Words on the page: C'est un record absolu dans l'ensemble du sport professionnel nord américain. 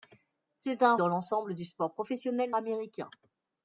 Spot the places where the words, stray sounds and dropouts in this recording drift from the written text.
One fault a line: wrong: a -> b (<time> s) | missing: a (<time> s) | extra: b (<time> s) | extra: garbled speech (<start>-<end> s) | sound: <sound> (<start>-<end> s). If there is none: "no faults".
missing: record absolu (0.9 s)
missing: nord (2.5 s)